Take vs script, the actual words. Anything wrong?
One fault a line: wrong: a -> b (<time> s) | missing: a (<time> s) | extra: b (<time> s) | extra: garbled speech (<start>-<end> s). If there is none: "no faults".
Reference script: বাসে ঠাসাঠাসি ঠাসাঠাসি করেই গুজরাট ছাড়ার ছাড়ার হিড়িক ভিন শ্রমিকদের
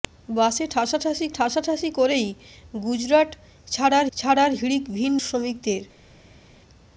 no faults